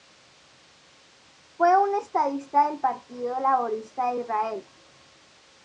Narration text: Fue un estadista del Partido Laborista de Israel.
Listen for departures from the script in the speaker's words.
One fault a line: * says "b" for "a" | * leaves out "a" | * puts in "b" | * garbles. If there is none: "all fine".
all fine